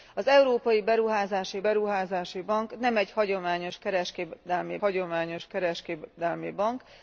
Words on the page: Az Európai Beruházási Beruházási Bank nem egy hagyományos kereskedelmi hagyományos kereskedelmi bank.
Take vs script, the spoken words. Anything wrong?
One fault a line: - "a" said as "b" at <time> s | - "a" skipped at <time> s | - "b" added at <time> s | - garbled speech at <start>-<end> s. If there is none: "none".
none